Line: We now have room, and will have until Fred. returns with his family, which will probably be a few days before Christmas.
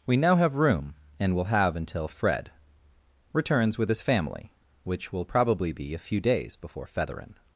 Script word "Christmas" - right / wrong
wrong